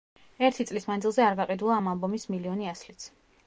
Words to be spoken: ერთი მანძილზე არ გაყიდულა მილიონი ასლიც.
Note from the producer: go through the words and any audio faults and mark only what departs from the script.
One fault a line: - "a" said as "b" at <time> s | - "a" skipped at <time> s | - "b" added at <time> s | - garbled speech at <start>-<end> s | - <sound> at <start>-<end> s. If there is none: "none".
- "წლის" added at 0.7 s
- "ამ ალბომის" added at 1.8 s